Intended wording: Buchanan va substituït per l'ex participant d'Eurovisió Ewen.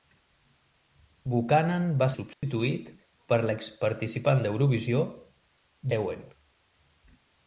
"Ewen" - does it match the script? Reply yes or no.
yes